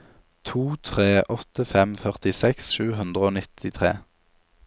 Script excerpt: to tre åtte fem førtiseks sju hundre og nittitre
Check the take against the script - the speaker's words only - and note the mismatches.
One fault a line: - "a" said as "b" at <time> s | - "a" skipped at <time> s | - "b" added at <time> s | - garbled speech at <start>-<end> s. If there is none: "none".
none